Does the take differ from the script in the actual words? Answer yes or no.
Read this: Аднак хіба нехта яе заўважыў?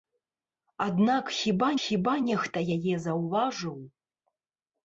yes